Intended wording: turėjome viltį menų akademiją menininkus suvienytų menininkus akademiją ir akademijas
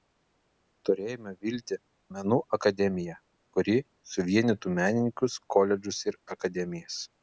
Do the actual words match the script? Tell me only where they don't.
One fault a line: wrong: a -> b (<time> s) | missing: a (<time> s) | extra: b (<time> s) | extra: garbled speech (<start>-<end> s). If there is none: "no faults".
wrong: menininkus -> kuri (3.6 s)
wrong: akademiją -> koledžus (5.6 s)